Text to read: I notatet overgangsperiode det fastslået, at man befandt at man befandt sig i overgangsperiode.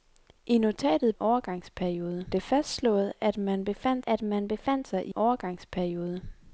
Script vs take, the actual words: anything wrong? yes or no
no